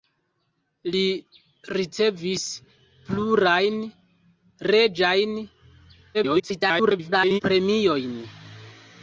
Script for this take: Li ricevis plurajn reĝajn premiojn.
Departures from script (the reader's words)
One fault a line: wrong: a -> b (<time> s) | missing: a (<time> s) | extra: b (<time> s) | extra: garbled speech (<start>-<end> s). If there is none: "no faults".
extra: garbled speech (6.1-7.4 s)